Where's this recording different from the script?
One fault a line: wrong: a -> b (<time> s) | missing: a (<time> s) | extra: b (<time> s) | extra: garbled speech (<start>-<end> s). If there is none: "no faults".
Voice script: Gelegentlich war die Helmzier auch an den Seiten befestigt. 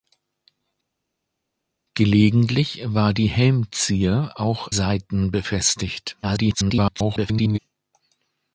missing: an den (4.7 s)
extra: garbled speech (6.2-7.6 s)